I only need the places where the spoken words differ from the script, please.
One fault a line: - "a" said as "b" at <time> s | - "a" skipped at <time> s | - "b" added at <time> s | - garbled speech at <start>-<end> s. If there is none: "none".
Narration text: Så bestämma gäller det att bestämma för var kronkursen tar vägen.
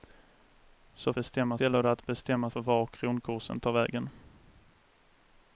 none